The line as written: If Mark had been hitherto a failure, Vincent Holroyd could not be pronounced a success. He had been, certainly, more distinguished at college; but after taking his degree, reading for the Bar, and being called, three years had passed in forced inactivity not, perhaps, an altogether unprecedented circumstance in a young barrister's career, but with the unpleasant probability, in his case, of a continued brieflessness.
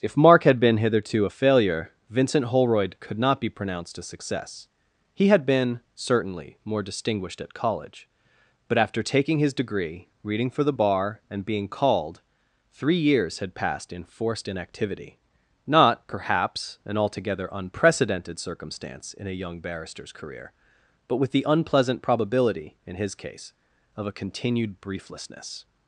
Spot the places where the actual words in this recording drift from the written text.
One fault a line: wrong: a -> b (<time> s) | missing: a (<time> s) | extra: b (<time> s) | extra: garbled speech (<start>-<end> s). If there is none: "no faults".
no faults